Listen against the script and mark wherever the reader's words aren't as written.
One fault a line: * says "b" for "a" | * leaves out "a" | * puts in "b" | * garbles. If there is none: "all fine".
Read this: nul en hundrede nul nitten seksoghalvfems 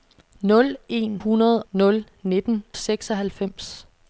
all fine